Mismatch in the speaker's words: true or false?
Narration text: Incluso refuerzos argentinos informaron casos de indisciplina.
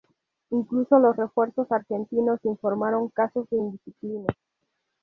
true